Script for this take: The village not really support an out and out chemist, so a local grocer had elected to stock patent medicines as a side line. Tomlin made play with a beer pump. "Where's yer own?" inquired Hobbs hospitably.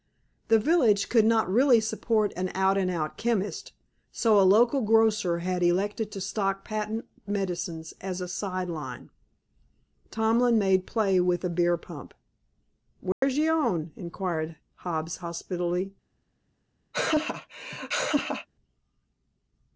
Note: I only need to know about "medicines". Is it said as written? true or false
true